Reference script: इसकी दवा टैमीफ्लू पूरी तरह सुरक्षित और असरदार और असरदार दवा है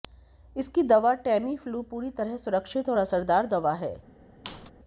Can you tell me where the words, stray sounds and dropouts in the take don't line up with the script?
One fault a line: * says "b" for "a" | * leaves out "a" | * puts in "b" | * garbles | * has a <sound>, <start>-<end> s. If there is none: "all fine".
* leaves out "और असरदार"
* has a squeak, 4.4-4.7 s